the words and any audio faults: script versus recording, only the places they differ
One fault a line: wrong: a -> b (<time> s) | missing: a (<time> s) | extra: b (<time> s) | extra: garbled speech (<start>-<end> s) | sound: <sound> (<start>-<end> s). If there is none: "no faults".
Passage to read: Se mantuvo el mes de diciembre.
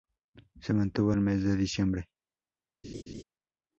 sound: laugh (2.8-3.2 s)